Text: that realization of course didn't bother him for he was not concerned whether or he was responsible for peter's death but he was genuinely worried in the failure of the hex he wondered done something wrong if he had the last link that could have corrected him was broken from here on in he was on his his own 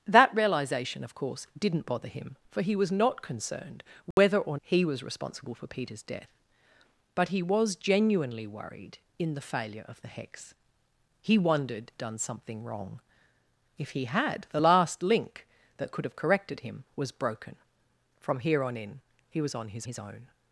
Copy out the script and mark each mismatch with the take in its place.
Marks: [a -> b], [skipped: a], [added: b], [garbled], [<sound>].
that realization of course didn't bother him for he was not concerned whether [dropout] or he was responsible for peter's death but he was genuinely worried in the failure of the hex he wondered done something wrong if he had the last link that could have corrected him was broken from here on in he was on his his own